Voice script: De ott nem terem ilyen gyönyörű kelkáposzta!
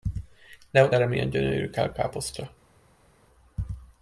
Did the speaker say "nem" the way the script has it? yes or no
no